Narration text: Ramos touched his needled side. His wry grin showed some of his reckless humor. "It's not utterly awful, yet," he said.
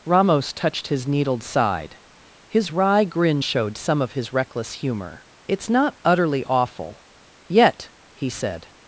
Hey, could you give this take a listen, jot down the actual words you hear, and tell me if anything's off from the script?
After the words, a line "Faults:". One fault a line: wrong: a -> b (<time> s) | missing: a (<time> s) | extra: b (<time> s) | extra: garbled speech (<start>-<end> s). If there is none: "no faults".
Ramos touched his needled side. His wry grin showed some of his reckless humor. "It's not utterly awful, yet," he said.
Faults:
no faults